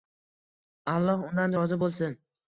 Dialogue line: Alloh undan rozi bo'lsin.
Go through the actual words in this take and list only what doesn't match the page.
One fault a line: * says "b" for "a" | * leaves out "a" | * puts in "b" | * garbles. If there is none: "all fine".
all fine